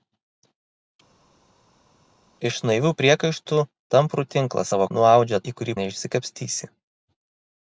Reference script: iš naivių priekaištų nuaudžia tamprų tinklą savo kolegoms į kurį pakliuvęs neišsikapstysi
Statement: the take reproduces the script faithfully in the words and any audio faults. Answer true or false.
false